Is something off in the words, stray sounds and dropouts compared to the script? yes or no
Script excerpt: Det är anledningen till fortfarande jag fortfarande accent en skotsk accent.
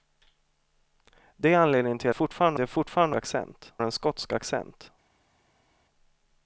no